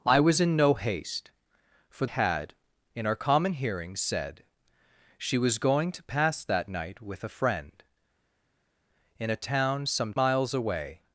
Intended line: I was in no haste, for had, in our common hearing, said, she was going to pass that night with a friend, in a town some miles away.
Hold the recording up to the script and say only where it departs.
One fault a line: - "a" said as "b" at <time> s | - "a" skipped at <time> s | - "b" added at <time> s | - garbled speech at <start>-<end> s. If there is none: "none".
none